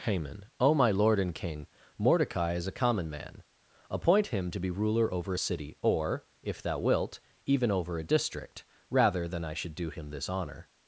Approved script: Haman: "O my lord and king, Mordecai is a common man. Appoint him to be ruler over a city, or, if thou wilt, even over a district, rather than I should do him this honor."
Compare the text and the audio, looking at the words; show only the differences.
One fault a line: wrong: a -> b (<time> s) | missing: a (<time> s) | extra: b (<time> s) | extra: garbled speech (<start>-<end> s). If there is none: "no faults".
no faults